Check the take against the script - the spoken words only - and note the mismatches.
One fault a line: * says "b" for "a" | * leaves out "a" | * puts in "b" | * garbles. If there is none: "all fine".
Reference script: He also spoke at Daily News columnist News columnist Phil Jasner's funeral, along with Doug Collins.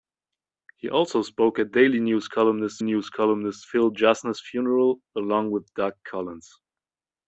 all fine